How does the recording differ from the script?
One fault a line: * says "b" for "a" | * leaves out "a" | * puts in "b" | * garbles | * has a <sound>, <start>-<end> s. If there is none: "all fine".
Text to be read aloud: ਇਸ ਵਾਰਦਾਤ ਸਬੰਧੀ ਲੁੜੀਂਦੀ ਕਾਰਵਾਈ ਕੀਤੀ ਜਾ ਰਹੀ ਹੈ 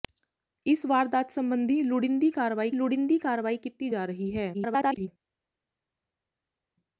* puts in "ਲੁੜੀਂਦੀ ਕਾਰਵਾਈ"
* garbles